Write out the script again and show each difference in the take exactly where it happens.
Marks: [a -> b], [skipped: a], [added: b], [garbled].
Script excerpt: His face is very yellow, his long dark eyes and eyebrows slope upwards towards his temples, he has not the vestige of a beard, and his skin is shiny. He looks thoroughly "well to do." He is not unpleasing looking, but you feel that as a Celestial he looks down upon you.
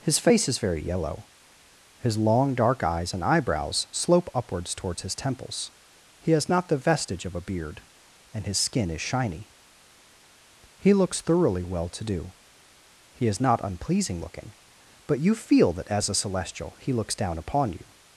His face is very yellow, his long dark eyes and eyebrows slope upwards towards his temples, he has not the vestige of a beard, and his skin is shiny. He looks thoroughly "well to do." He is not unpleasing looking, but you feel that as a Celestial he looks down upon you.